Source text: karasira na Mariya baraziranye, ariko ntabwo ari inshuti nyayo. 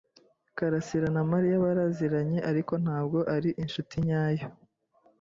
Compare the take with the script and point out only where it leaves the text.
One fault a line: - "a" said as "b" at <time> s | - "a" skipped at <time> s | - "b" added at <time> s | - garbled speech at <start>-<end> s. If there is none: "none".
none